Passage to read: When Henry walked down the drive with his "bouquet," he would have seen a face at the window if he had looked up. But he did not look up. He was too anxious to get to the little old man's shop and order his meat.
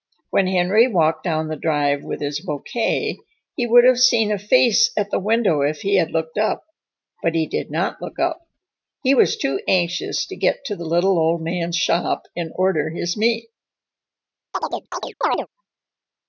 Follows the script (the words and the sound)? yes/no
no